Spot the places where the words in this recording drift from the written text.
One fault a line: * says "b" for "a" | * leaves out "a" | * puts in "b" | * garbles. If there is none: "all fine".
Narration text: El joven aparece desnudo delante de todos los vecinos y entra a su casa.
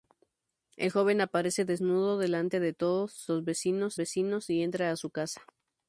* puts in "vecinos"